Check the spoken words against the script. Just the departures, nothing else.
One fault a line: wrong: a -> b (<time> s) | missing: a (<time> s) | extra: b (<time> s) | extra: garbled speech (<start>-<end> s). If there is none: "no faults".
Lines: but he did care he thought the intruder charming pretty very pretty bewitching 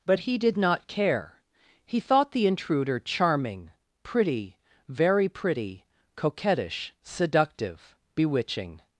extra: not (0.6 s)
extra: coquettish seductive (6.1 s)